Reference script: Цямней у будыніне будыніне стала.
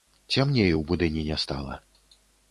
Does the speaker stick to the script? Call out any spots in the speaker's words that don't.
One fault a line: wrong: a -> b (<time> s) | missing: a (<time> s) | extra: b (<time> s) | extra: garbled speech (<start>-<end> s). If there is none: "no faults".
missing: будыніне (1.4 s)